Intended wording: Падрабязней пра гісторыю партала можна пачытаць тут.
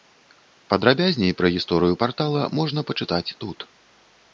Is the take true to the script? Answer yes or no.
yes